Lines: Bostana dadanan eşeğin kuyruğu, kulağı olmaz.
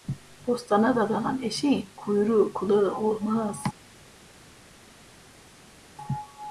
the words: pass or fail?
pass